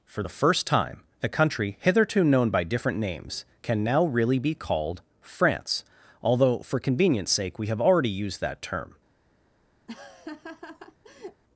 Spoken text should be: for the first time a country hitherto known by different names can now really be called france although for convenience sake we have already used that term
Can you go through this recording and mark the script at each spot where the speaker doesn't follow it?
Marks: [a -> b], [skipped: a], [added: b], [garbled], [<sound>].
for the first time a country hitherto known by different names can now really be called france although for convenience sake we have already used that term [laugh]